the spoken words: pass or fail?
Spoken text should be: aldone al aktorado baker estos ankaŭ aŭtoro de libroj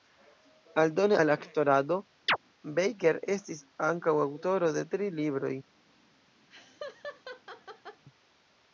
fail